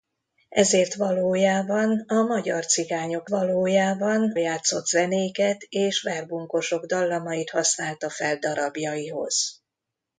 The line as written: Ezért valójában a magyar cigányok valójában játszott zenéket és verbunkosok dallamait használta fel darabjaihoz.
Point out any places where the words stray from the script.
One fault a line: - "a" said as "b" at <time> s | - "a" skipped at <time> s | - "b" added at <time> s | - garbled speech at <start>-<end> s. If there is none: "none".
none